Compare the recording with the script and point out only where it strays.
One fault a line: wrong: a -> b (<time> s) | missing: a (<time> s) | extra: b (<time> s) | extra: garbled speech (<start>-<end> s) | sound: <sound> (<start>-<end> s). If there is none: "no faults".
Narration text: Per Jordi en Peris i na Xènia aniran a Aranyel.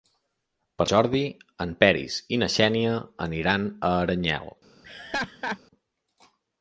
sound: laugh (4.8-5.6 s)